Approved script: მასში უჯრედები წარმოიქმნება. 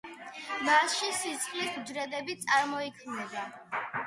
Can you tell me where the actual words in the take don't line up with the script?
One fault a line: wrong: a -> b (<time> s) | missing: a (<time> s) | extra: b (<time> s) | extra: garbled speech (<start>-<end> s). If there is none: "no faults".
extra: სისხლის (1.2 s)